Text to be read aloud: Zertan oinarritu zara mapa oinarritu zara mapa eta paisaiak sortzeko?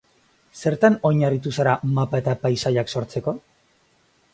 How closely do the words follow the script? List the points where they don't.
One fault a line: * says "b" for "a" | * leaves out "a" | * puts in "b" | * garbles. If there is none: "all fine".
* leaves out "oinarritu zara mapa"